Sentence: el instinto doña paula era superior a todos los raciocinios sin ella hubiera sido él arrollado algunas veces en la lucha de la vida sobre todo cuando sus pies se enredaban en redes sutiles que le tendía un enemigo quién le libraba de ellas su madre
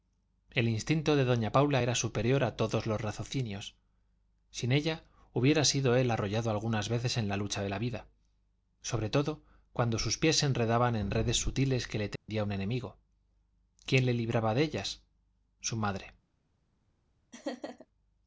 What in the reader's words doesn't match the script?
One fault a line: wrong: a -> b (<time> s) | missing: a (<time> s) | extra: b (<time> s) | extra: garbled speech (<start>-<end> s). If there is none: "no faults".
extra: de (1.1 s)